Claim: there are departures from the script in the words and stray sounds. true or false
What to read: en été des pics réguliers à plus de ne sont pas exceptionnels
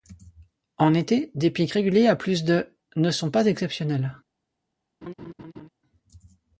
true